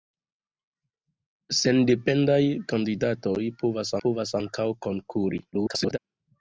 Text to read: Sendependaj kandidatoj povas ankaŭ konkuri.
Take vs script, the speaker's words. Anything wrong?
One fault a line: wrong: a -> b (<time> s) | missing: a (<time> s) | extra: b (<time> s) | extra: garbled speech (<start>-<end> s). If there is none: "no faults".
extra: povas (4.0 s)
extra: garbled speech (5.5-6.0 s)